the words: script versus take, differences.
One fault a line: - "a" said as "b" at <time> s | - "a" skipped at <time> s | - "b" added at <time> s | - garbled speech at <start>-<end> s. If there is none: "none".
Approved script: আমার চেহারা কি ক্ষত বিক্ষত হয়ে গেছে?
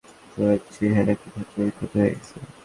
- "আমার" said as "তোমার" at 0.3 s